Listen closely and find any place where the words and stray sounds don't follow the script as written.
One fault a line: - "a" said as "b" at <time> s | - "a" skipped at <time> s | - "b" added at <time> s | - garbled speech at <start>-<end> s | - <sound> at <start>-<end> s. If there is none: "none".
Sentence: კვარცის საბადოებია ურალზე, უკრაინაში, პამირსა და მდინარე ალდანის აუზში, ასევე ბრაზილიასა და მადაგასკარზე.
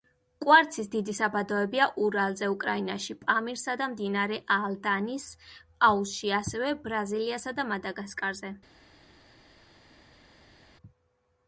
- "დიდი" added at 0.9 s